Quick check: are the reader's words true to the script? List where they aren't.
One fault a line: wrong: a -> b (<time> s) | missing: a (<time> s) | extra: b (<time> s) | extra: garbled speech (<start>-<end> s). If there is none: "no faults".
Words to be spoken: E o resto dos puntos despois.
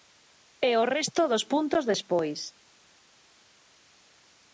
no faults